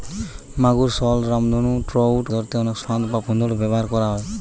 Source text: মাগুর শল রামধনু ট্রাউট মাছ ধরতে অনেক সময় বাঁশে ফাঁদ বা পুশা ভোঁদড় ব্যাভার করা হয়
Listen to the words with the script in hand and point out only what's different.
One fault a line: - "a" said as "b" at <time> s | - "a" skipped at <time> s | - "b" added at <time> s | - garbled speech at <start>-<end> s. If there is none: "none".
- "মাছ" skipped at 2.2 s
- "সময় বাঁশে" skipped at 2.8 s
- "পুশা" skipped at 3.2 s